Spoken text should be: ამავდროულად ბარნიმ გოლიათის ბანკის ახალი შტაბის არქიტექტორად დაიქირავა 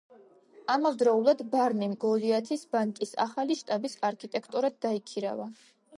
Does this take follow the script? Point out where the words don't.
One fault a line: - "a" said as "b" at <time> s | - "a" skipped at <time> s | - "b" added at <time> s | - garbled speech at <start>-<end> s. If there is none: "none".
none